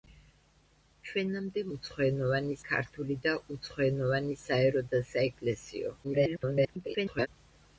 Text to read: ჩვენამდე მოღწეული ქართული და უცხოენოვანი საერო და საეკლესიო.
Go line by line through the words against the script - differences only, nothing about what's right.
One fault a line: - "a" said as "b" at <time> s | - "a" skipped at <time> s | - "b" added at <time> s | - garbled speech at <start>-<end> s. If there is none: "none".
- "მოღწეული" said as "უცხოენოვანი" at 1.8 s
- garbled speech at 6.0-7.3 s